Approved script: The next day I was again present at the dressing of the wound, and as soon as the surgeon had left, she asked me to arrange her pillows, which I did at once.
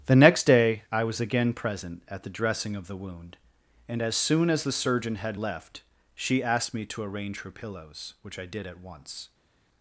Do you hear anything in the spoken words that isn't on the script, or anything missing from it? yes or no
no